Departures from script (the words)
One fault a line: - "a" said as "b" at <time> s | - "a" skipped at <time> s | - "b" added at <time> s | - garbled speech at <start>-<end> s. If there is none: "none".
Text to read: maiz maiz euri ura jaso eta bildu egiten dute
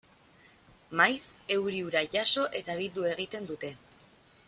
- "maiz" skipped at 1.3 s